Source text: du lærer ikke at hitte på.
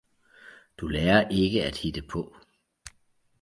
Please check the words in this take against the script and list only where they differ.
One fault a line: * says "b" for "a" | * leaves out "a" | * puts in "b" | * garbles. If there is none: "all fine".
all fine